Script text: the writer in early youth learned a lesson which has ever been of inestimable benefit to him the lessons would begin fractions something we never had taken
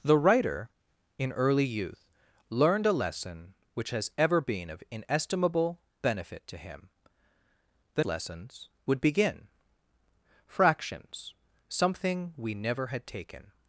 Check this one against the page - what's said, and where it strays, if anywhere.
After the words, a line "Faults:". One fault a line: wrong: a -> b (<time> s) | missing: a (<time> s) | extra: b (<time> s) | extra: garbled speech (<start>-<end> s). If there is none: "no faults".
the writer in early youth learned a lesson which has ever been of inestimable benefit to him the lessons would begin fractions something we never had taken
Faults:
no faults